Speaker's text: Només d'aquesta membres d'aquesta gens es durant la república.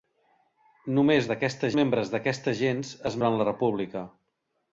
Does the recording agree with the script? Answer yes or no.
yes